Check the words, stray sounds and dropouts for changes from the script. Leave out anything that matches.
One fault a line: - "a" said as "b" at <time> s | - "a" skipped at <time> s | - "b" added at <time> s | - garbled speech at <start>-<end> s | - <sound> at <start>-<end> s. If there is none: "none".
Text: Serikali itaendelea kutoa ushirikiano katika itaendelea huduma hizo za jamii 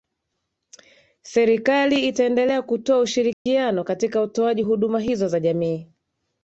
- dropout at 3.3-3.5 s
- "itaendelea" said as "utoaji" at 4.2 s